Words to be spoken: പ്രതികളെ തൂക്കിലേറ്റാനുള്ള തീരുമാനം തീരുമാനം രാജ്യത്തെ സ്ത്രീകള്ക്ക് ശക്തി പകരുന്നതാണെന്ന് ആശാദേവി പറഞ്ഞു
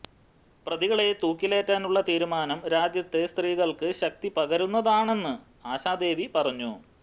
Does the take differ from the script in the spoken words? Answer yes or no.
yes